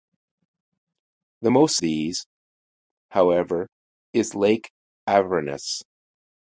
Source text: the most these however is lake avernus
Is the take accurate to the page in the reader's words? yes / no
yes